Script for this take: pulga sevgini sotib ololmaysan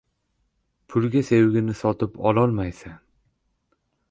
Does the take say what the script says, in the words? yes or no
yes